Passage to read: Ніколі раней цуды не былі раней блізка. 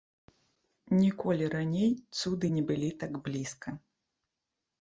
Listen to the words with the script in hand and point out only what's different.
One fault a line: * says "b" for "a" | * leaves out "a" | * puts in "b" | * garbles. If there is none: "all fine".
* says "так" for "раней"